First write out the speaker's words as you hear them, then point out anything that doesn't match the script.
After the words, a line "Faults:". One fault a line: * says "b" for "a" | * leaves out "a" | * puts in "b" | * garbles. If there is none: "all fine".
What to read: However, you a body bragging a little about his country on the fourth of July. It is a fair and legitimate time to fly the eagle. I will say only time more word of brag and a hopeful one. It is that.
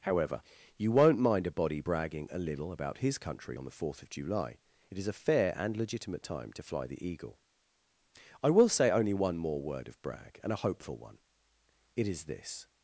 However, you won't mind a body bragging a little about his country on the fourth of July. It is a fair and legitimate time to fly the eagle. I will say only one more word of brag and a hopeful one. It is this.
Faults:
* puts in "won't mind"
* says "one" for "time"
* says "this" for "that"